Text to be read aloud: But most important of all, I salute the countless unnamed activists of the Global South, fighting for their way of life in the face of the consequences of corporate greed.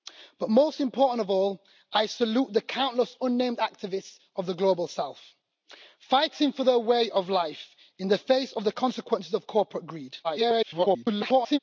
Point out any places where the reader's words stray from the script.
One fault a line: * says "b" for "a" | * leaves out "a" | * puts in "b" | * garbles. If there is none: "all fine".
* garbles